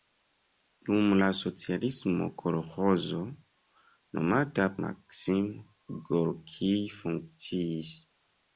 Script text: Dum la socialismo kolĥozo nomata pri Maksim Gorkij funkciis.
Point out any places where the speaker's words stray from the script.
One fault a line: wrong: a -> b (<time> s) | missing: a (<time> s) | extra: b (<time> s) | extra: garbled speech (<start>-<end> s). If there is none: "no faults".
missing: pri (4.7 s)